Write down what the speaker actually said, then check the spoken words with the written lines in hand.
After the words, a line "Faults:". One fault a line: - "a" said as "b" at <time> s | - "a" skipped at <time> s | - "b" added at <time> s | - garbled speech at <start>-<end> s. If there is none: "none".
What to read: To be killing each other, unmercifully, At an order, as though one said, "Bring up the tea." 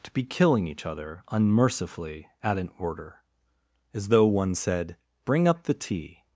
To be killing each other, unmercifully, At an order, as though one said, "Bring up the tea."
Faults:
none